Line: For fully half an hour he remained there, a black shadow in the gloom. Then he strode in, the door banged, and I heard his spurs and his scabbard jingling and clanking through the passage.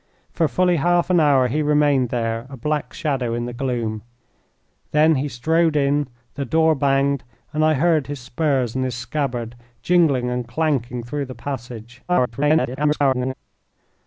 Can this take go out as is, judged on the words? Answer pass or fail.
fail